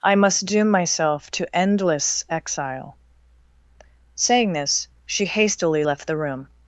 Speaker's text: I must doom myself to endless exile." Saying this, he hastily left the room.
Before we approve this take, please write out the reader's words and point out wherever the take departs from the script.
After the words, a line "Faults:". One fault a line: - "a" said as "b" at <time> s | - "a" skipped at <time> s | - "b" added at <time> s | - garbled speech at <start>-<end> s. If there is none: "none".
I must doom myself to endless exile." Saying this, she hastily left the room.
Faults:
- "he" said as "she" at 5.0 s